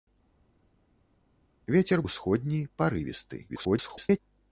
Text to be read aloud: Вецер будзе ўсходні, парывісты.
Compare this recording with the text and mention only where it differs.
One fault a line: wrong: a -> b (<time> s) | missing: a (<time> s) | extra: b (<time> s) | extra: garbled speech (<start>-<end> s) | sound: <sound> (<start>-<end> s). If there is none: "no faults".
missing: будзе (2.0 s)
extra: garbled speech (3.5-4.2 s)